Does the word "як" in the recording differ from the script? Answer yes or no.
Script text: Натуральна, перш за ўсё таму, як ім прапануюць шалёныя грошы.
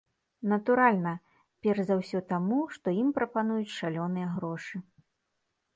yes